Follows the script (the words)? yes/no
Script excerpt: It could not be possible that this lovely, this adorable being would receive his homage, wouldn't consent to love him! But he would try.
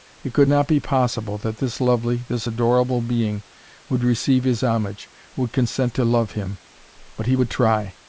no